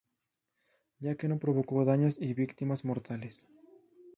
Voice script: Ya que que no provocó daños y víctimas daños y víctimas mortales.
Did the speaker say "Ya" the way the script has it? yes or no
yes